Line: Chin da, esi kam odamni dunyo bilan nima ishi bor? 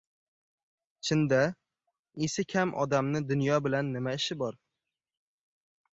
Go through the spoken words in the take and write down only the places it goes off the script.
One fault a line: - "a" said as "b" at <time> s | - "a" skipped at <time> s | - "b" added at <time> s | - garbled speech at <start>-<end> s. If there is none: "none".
none